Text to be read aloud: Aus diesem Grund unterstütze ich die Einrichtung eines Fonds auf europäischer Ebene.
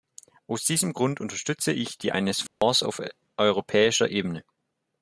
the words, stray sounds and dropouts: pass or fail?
fail